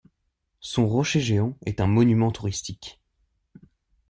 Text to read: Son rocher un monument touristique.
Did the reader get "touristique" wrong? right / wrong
right